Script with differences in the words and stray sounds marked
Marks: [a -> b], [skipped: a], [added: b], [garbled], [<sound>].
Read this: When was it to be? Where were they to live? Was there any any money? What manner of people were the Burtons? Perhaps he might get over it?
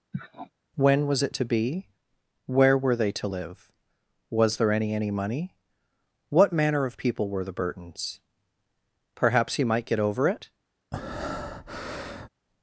[sniff] When was it to be? Where were they to live? Was there any any money? What manner of people were the Burtons? Perhaps he might get over it? [breath]